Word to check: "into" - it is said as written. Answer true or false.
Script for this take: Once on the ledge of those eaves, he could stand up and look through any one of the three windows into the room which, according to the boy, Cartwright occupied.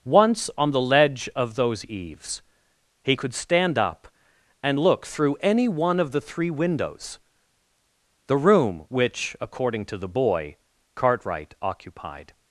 false